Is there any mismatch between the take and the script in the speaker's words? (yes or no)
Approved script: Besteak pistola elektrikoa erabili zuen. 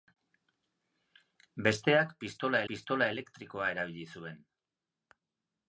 yes